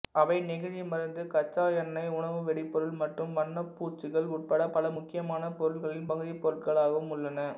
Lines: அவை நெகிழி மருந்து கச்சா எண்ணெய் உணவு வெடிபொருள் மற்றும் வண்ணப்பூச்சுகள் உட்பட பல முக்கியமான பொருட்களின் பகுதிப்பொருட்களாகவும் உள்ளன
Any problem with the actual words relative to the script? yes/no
no